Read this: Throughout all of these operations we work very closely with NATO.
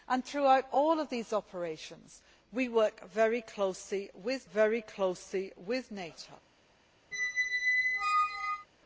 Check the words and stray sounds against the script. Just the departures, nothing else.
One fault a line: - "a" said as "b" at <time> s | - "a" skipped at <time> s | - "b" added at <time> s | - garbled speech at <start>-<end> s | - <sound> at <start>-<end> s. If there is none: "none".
- "very closely with" added at 4.5 s
- squeak at 7.1-8.7 s